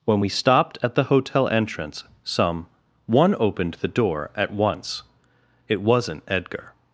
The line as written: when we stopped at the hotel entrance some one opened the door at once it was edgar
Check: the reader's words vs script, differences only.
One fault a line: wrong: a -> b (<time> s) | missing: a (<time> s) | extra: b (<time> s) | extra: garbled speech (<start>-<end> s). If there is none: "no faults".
wrong: was -> wasn't (5.8 s)